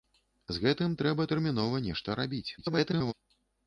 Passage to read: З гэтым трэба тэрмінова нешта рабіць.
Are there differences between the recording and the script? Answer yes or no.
yes